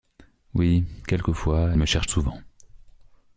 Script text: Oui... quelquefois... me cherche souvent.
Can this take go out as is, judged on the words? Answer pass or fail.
pass